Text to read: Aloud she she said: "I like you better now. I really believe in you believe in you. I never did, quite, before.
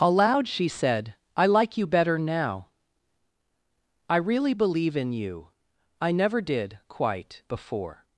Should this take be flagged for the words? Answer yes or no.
yes